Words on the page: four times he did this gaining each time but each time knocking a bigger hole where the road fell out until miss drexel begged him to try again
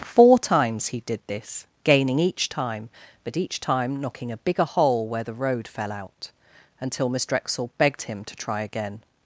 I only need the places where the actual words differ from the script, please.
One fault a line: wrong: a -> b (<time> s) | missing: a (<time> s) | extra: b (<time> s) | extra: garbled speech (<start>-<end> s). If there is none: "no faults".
no faults